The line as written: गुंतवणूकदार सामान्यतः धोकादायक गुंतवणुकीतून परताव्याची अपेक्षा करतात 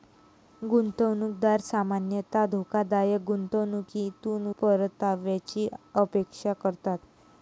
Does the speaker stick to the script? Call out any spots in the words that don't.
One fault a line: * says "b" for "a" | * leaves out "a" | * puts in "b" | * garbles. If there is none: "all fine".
all fine